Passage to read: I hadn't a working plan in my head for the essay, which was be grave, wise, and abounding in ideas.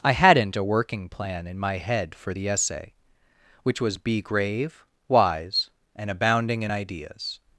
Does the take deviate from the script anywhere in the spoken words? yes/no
no